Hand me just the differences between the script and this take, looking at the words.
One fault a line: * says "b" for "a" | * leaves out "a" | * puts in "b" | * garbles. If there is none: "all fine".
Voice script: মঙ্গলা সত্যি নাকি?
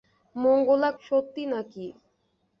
all fine